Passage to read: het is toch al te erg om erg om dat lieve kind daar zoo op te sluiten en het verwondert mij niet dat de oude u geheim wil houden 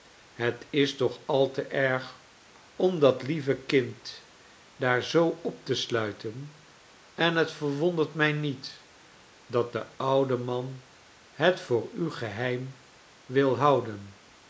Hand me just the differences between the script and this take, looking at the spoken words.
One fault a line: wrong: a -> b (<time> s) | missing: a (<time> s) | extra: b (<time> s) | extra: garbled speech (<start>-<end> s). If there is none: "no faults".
missing: erg om (3.0 s)
extra: man het voor (10.4 s)